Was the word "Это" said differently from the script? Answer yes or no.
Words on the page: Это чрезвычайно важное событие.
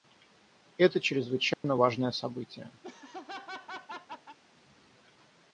no